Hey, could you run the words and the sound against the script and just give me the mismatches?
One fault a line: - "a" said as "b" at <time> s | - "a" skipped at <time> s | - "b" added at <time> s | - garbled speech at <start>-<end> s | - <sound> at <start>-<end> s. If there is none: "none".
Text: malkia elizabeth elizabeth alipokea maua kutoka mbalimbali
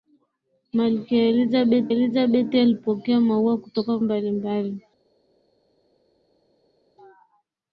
none